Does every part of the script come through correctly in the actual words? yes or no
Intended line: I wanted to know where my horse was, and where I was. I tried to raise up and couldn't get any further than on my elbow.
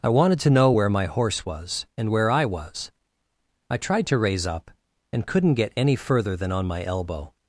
yes